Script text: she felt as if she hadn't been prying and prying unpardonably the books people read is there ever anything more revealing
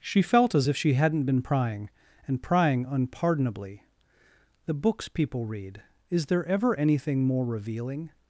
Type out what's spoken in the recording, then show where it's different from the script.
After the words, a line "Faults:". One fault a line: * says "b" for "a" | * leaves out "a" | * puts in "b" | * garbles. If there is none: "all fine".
she felt as if she hadn't been prying and prying unpardonably the books people read is there ever anything more revealing
Faults:
all fine